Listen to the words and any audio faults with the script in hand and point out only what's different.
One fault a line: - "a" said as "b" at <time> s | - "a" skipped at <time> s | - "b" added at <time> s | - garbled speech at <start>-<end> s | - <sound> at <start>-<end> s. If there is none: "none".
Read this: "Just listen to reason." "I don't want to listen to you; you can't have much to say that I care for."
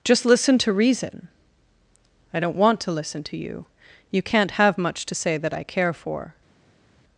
none